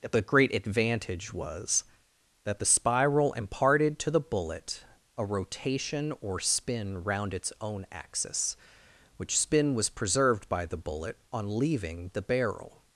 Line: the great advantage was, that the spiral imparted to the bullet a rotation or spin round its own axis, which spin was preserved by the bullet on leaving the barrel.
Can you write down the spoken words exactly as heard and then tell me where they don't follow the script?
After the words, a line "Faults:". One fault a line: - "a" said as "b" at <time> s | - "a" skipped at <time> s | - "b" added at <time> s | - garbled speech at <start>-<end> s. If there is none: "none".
the great advantage was, that the spiral imparted to the bullet a rotation or spin round its own axis, which spin was preserved by the bullet on leaving the barrel.
Faults:
none